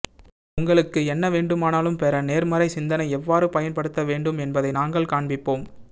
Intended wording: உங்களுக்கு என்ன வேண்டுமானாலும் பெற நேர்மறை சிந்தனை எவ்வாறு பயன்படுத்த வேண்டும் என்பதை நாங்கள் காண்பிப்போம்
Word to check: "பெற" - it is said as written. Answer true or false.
true